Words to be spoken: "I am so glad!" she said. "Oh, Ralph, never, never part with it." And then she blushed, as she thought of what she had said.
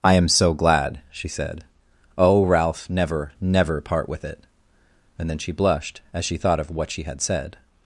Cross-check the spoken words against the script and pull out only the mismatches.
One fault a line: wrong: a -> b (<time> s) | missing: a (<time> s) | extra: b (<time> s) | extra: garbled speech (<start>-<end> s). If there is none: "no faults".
no faults